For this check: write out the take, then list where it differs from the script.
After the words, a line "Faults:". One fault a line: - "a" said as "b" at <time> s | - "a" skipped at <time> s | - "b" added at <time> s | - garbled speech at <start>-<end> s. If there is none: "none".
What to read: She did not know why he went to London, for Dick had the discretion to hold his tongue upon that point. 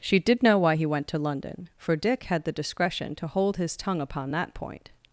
She did know why he went to London, for Dick had the discretion to hold his tongue upon that point.
Faults:
- "not" skipped at 0.4 s